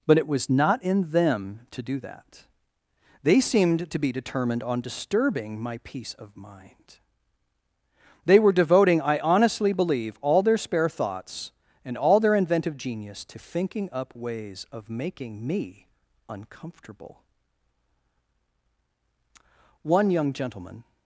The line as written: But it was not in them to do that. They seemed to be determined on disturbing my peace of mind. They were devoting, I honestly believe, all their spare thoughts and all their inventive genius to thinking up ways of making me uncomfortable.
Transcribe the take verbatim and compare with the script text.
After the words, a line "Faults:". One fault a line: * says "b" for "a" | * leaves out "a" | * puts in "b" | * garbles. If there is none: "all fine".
But it was not in them to do that. They seemed to be determined on disturbing my peace of mind. They were devoting, I honestly believe, all their spare thoughts and all their inventive genius to thinking up ways of making me uncomfortable. One young gentleman
Faults:
* puts in "One young gentleman"